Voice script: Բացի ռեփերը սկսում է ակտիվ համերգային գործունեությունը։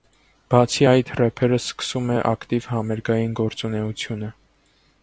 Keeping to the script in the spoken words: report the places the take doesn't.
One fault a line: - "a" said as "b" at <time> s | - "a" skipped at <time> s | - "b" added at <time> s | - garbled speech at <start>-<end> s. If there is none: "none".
- "այդ" added at 0.9 s